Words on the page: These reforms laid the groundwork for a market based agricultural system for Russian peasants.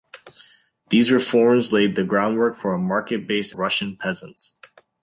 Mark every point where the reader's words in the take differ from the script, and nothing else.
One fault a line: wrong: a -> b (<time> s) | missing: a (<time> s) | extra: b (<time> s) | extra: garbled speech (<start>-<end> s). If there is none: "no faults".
missing: agricultural system for (3.5 s)